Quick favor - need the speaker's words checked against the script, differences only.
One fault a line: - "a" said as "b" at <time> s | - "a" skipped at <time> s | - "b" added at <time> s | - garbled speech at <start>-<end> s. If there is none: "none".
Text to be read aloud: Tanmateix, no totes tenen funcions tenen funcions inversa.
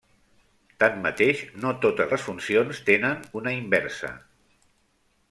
- "tenen" said as "les" at 2.1 s
- "funcions" said as "una" at 3.4 s